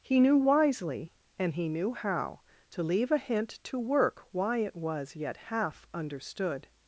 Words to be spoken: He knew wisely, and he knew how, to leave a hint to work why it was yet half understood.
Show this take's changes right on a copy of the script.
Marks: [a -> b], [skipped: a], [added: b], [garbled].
He knew wisely, and he knew how, to leave a hint to work why it was yet half understood.